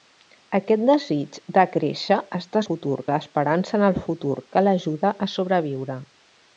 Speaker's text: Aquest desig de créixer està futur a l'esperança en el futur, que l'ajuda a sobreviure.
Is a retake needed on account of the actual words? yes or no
no